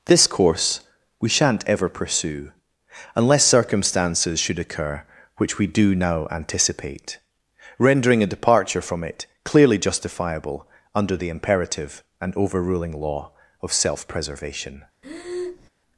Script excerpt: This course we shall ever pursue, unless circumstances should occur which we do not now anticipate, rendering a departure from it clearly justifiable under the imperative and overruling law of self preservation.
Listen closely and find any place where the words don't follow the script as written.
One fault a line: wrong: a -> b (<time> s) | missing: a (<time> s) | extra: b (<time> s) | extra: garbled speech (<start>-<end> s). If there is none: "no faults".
wrong: shall -> shan't (1.3 s)
missing: not (6.0 s)